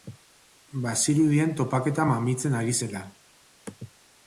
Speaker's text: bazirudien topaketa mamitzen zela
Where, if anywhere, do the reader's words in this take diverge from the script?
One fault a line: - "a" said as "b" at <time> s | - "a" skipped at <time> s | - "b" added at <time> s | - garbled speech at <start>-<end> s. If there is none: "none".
- "ari" added at 2.6 s